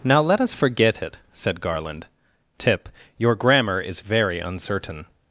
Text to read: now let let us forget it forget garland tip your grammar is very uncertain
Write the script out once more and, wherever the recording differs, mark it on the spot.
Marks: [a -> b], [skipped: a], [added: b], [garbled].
now let [skipped: let] us forget it [forget -> said] garland tip your grammar is very uncertain